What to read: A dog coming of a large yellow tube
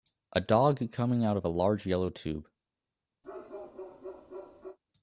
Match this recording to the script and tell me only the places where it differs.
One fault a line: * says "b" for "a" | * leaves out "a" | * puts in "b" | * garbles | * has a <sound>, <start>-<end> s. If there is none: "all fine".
* puts in "out"
* has a bark, 3.2-4.8 s